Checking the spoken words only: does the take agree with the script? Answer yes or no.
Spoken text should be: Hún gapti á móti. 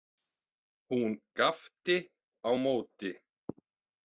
yes